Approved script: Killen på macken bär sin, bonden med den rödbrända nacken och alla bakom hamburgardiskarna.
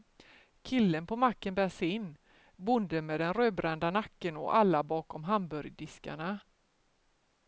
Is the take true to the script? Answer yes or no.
yes